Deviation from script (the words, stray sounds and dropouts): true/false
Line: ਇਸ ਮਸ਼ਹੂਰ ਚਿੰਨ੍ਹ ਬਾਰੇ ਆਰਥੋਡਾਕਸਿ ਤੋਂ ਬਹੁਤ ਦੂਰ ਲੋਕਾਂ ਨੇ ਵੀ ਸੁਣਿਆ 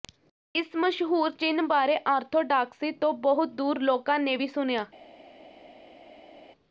false